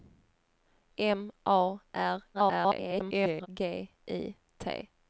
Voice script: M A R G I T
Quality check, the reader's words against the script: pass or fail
fail